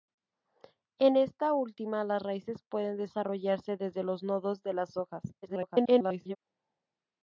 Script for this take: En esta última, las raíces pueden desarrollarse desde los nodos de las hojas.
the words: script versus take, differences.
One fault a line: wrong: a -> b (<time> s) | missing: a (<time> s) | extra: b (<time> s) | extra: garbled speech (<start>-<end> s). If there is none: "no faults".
extra: garbled speech (5.4-6.4 s)